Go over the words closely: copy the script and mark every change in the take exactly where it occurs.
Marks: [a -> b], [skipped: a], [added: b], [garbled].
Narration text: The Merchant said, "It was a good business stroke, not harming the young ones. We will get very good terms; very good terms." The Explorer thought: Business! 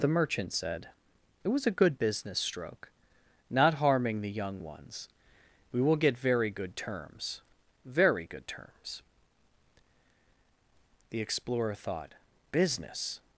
The Merchant said, "It was a good business stroke, not harming the young ones. We will get very good terms; very good terms." The Explorer thought: Business!